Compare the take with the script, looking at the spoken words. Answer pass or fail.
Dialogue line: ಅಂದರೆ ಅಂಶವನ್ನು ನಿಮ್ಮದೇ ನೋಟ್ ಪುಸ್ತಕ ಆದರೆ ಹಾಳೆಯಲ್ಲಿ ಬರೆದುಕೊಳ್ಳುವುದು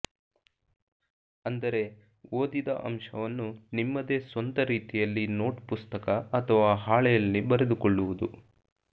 fail